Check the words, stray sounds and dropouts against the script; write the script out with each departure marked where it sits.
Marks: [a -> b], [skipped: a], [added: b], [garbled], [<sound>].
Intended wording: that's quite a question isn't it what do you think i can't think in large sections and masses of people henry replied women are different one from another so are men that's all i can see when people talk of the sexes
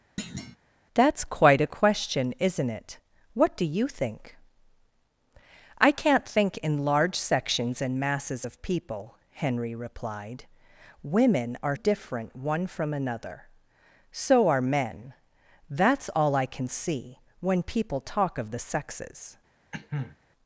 [thud] that's quite a question isn't it what do you think i can't think in large sections and masses of people henry replied women are different one from another so are men that's all i can see when people talk of the sexes [cough]